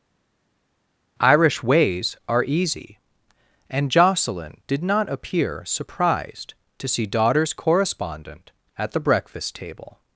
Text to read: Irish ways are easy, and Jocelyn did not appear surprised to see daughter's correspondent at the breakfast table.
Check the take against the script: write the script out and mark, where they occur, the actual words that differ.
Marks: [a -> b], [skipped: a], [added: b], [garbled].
Irish ways are easy, and Jocelyn did not appear surprised to see daughter's correspondent at the breakfast table.